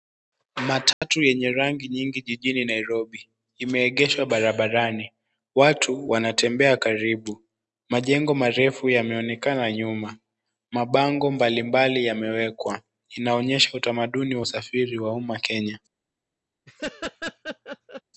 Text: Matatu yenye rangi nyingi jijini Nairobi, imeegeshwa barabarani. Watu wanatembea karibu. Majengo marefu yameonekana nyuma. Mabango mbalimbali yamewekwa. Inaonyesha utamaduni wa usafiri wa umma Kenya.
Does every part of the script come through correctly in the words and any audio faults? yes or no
no